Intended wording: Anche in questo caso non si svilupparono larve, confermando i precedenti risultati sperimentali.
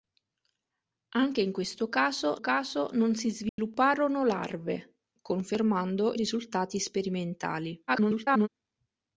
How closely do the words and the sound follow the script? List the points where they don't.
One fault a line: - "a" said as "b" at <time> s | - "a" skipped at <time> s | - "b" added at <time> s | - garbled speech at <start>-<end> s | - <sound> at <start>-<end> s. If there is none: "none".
- "caso" added at 2.4 s
- dropout at 3.5-3.6 s
- "i precedenti" skipped at 6.1 s
- garbled speech at 7.9-8.5 s